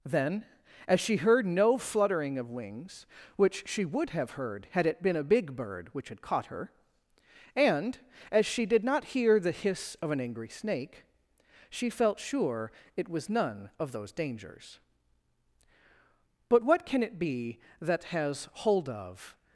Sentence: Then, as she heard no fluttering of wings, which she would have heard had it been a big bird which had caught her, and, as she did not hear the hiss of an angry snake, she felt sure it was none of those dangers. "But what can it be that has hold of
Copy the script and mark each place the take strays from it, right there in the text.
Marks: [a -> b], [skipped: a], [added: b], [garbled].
Then, as she heard no fluttering of wings, which she would have heard had it been a big bird which had caught her, and, as she did not hear the hiss of an angry snake, she felt sure it was none of those dangers. "But what can it be that has hold of